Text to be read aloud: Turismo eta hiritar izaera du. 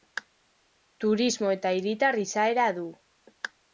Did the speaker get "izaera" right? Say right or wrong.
right